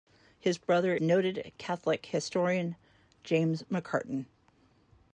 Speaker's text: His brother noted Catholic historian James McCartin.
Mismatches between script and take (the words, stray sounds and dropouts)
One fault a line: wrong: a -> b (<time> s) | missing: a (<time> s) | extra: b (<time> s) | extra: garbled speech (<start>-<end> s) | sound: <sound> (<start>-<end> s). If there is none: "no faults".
no faults